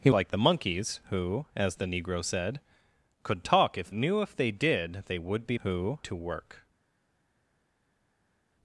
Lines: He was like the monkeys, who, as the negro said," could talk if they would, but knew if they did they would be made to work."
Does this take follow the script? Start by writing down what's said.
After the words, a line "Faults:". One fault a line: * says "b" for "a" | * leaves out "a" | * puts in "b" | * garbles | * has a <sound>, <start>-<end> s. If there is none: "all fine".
He like the monkeys, who, as the negro said," could talk if knew if they did they would be who to work."
Faults:
* leaves out "was"
* leaves out "they would but"
* says "who" for "made"